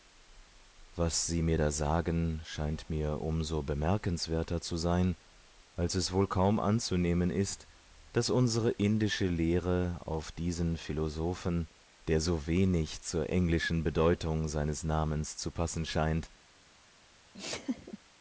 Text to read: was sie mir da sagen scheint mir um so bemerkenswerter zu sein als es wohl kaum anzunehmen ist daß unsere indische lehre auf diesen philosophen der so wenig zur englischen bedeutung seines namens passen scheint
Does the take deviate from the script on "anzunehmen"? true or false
false